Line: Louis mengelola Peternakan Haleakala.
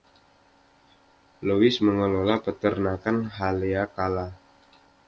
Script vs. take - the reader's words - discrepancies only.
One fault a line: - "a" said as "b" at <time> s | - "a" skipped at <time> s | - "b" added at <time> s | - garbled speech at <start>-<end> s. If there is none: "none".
none